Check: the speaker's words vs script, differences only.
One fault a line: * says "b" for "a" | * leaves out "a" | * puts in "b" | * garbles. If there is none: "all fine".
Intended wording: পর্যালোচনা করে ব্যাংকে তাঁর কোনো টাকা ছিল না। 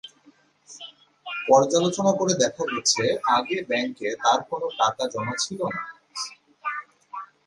* puts in "দেখা গেছে আগে"
* puts in "জমা"